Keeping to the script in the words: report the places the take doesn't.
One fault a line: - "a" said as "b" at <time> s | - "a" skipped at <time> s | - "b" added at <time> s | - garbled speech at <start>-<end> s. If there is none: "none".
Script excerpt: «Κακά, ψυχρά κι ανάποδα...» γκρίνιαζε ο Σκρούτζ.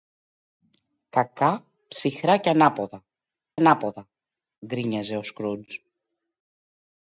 - "ανάποδα" added at 3.5 s